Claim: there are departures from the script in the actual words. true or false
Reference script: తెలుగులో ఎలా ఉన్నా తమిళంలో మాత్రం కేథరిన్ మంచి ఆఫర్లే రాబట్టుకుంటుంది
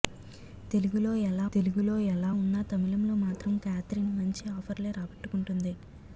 true